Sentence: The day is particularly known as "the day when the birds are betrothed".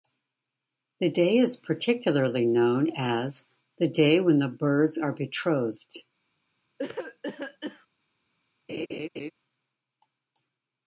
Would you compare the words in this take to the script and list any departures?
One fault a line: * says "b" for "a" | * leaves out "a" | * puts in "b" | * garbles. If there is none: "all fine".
all fine